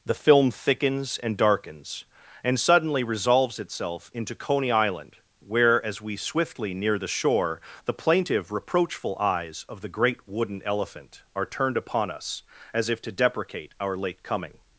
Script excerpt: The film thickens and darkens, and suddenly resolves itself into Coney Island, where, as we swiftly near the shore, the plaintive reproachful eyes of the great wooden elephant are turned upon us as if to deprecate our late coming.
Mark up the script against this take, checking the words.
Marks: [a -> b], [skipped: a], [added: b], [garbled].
The film thickens and darkens, and suddenly resolves itself into Coney Island, where, as we swiftly near the shore, the plaintive reproachful eyes of the great wooden elephant are turned upon us as if to deprecate our late coming.